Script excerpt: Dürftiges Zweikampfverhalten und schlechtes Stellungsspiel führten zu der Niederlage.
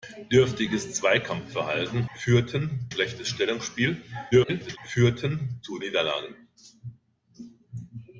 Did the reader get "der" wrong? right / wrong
wrong